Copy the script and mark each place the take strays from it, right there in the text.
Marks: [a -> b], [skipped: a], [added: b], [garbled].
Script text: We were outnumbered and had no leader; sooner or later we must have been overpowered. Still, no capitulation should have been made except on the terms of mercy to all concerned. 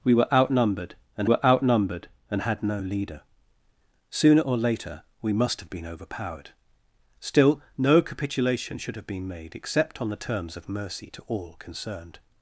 We were outnumbered and [added: were outnumbered and] had no leader; sooner or later we must have been overpowered. Still, no capitulation should have been made except on the terms of mercy to all concerned.